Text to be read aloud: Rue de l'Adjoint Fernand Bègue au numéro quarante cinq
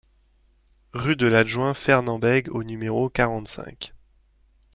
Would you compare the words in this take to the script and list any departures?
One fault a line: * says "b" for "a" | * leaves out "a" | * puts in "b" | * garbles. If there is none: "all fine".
all fine